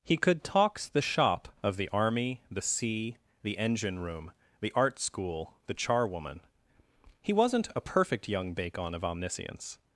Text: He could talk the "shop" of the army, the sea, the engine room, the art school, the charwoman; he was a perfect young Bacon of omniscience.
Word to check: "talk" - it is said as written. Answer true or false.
false